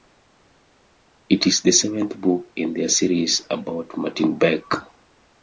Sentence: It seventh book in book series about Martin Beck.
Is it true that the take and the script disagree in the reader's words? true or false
true